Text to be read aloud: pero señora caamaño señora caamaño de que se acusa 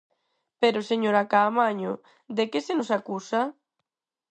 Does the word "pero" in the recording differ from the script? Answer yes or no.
no